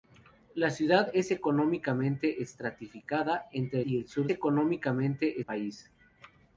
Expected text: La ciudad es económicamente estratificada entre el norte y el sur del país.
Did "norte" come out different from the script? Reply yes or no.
yes